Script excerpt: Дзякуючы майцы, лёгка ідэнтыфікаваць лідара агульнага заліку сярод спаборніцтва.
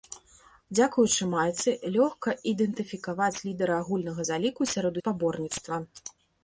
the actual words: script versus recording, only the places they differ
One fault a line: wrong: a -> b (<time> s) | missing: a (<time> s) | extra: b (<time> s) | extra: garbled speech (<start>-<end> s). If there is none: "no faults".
no faults